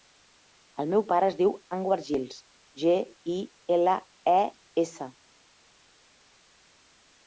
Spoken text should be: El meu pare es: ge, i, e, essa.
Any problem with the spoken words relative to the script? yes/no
yes